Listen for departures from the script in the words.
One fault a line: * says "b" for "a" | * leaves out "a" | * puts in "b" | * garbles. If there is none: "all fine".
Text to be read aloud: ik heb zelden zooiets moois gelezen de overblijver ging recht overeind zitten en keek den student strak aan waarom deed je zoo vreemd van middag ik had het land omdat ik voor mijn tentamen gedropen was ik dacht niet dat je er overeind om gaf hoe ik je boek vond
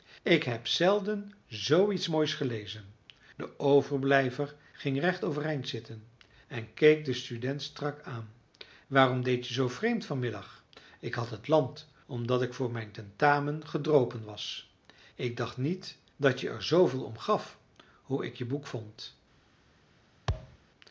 * says "zooveel" for "overeind"